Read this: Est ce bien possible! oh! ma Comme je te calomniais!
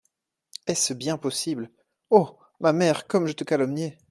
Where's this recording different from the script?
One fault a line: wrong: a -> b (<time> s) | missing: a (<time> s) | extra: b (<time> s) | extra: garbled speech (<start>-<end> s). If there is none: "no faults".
extra: mère (2.7 s)